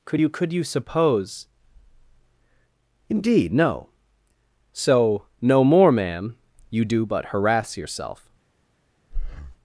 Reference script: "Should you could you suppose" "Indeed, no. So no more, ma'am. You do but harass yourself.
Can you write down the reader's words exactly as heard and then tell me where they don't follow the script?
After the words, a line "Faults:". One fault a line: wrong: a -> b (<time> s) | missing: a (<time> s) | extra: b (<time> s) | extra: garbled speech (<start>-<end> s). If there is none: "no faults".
"Could you could you suppose" "Indeed, no. So no more, ma'am. You do but harass yourself.
Faults:
wrong: Should -> Could (0.1 s)